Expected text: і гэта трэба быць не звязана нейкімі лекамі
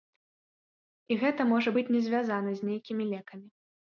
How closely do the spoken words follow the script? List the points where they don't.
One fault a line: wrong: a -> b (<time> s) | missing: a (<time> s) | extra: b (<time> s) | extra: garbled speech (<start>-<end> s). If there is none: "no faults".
wrong: трэба -> можа (1.5 s)
extra: з (2.6 s)